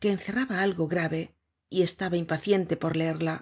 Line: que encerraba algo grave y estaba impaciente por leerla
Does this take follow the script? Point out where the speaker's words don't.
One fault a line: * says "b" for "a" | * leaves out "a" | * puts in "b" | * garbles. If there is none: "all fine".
all fine